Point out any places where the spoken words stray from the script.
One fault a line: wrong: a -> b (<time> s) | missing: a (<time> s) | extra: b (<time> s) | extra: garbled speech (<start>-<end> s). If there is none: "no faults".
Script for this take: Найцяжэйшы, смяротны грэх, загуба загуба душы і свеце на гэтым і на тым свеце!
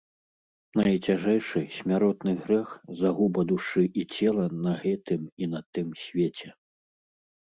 missing: загуба (3.4 s)
wrong: свеце -> цела (4.2 s)